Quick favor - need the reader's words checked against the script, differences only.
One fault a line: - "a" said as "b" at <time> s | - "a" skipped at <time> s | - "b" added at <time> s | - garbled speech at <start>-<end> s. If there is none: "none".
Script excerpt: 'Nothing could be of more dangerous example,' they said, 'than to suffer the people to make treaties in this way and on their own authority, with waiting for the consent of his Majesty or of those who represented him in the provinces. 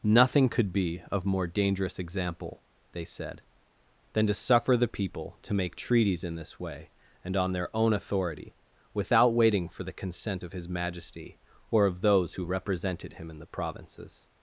- "with" said as "without" at 8.9 s